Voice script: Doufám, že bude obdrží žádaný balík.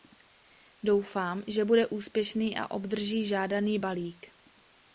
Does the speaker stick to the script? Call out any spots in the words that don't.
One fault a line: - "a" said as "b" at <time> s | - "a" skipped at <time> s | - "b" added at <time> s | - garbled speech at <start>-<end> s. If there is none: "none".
- "úspěšný a" added at 1.9 s